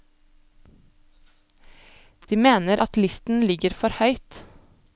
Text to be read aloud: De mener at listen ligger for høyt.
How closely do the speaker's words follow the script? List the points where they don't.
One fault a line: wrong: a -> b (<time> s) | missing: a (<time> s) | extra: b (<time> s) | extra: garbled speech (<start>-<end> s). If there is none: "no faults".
no faults